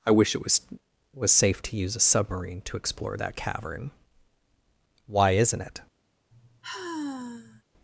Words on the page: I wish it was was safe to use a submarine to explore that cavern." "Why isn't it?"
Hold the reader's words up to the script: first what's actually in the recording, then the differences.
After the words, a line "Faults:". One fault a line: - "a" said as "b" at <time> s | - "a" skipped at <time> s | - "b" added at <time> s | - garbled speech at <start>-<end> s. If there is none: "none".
I wish it was was safe to use a submarine to explore that cavern." "Why isn't it?"
Faults:
none